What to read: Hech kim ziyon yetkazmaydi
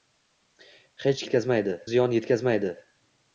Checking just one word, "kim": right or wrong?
wrong